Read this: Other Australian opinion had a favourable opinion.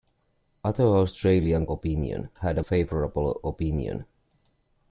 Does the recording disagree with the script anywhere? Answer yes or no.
no